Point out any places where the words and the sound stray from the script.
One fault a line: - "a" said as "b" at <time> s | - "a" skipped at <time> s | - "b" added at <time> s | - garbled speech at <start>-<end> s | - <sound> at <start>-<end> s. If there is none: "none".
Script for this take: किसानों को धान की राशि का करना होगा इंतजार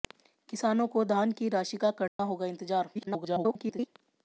- dropout at 2.1-2.2 s
- garbled speech at 2.9-3.9 s